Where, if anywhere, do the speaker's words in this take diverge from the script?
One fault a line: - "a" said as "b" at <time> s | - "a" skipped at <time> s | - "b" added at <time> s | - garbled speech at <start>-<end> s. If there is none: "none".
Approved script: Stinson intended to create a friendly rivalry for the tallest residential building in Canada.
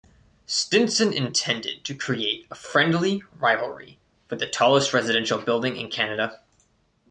none